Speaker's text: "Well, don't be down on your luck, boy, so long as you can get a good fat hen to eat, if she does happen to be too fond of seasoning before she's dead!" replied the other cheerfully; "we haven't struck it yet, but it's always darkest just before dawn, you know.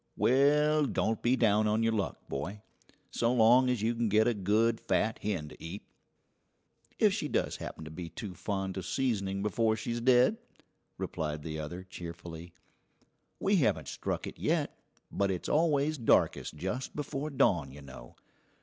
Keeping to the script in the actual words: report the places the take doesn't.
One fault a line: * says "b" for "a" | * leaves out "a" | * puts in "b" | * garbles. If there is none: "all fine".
all fine